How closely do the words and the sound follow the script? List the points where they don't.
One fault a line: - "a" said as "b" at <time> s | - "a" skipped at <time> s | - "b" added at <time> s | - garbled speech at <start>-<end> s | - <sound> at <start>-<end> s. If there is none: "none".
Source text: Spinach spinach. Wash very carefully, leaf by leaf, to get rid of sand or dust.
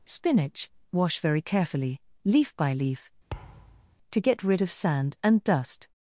- "spinach" skipped at 0.7 s
- thud at 3.3-4.0 s
- "or" said as "and" at 5.2 s